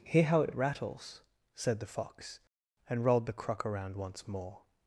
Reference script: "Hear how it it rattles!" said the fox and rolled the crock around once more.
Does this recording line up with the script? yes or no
yes